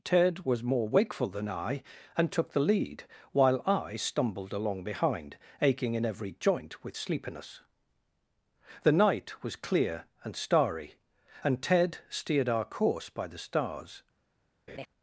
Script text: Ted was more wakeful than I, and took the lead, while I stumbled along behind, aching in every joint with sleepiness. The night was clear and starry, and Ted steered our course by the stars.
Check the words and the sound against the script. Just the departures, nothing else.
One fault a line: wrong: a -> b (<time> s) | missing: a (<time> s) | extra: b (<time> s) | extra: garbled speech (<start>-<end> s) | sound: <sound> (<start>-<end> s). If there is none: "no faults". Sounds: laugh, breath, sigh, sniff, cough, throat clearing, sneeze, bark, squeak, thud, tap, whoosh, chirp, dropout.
sound: laugh (14.7-14.9 s)